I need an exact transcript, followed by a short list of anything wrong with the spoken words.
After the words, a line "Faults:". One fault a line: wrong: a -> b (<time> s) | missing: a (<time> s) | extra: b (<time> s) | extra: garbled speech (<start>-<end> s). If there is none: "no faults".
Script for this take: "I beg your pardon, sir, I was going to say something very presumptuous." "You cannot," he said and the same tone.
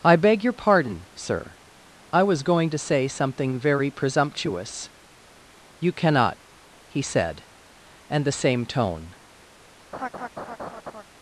"I beg your pardon, sir, I was going to say something very presumptuous." "You cannot," he said and the same tone.
Faults:
no faults